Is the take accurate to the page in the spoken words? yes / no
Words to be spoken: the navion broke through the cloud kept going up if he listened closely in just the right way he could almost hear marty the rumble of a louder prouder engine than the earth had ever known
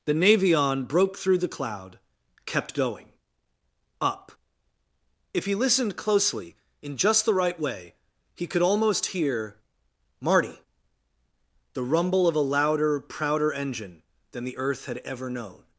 yes